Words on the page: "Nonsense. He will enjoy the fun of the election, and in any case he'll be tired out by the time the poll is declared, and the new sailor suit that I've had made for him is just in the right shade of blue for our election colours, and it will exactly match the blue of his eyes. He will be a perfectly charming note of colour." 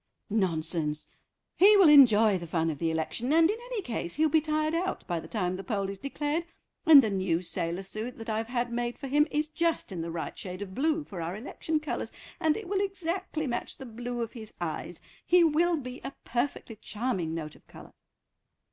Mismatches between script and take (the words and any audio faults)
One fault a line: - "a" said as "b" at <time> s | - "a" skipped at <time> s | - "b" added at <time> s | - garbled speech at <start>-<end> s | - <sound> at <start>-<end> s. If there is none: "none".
none